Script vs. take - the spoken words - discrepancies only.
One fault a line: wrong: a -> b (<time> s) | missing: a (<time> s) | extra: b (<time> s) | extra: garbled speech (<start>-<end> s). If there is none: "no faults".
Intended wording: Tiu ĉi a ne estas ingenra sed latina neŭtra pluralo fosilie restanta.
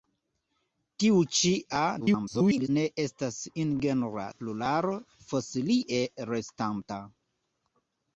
extra: garbled speech (2.0-2.7 s)
missing: sed latina neŭtra (4.3 s)